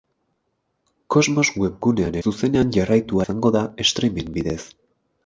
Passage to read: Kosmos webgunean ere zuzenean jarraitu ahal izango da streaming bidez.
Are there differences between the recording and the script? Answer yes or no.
yes